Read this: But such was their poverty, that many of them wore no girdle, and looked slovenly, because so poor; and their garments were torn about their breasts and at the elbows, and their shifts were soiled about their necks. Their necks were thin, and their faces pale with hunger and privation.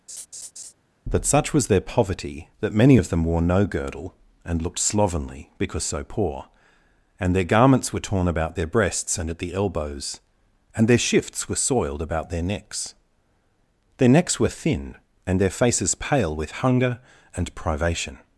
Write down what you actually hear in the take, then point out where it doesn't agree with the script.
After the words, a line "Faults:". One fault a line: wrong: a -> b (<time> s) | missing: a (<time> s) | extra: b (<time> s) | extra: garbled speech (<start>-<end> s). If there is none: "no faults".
That such was their poverty, that many of them wore no girdle, and looked slovenly, because so poor; and their garments were torn about their breasts and at the elbows, and their shifts were soiled about their necks. Their necks were thin, and their faces pale with hunger and privation.
Faults:
wrong: But -> That (1.1 s)